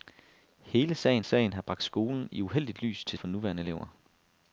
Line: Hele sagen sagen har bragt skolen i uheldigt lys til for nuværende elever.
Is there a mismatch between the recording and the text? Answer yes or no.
no